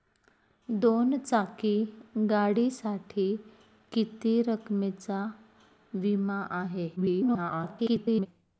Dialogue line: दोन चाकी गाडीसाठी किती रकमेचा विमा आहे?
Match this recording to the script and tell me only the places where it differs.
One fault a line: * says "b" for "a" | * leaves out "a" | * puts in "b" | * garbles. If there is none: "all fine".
* garbles